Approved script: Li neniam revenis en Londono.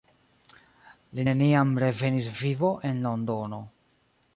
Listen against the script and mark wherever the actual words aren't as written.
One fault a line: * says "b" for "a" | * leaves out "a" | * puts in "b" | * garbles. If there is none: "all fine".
* puts in "vivo"